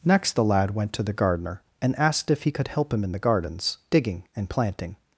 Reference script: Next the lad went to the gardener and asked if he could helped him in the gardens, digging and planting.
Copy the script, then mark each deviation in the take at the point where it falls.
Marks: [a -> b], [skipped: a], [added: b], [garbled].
Next the lad went to the gardener and asked if he could [helped -> help] him in the gardens, digging and planting.